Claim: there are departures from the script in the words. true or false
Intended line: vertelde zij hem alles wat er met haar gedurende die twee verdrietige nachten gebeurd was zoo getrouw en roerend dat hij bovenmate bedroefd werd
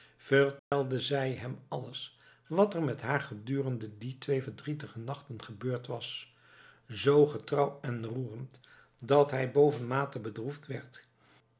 false